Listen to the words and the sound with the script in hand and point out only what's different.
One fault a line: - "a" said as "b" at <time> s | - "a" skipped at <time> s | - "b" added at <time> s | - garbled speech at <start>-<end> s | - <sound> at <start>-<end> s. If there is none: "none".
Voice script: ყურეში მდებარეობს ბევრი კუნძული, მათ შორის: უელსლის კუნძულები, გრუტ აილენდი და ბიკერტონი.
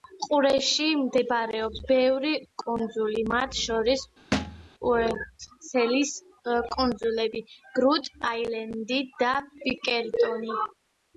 - thud at 4.3-4.7 s